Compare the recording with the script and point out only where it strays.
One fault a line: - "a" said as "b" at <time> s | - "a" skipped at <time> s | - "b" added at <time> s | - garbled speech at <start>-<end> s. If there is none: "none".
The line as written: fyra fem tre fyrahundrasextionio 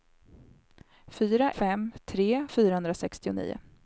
none